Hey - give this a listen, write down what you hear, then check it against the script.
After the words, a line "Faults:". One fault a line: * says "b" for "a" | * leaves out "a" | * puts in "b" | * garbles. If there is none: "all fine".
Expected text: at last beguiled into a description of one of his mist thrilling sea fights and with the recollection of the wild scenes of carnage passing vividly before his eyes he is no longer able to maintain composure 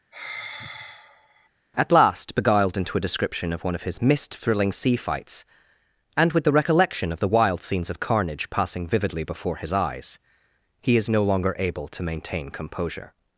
at last beguiled into a description of one of his mist thrilling sea fights and with the recollection of the wild scenes of carnage passing vividly before his eyes he is no longer able to maintain composure
Faults:
all fine